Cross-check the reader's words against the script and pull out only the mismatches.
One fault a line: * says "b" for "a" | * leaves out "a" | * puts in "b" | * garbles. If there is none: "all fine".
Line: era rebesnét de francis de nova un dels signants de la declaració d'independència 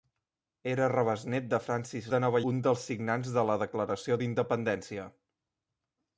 all fine